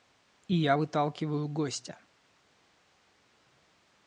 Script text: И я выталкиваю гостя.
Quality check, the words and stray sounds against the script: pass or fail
pass